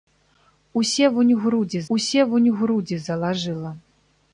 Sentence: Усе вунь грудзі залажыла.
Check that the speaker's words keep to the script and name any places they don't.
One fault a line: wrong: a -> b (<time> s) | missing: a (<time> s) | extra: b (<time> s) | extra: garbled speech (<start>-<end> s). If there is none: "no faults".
extra: усе вунь грудзі (1.9 s)